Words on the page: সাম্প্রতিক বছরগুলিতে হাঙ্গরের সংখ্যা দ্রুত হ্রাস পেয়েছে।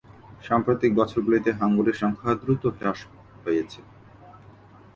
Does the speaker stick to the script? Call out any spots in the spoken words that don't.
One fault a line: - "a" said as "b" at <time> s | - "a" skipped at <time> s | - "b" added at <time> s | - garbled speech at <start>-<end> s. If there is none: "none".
none